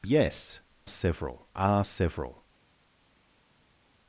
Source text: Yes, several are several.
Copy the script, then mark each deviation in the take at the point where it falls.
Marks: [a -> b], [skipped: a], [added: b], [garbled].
Yes, several are several.